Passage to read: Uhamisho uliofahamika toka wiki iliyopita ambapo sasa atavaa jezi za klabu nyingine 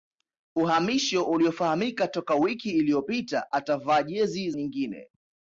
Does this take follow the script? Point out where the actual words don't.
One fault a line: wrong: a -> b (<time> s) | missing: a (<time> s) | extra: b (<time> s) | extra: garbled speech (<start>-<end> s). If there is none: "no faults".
missing: ambapo sasa (3.5 s)
missing: za klabu (4.5 s)